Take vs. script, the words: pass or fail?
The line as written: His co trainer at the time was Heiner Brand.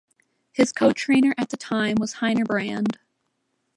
pass